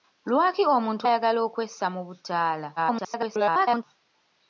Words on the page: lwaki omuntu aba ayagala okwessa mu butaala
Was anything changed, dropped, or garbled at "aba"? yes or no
yes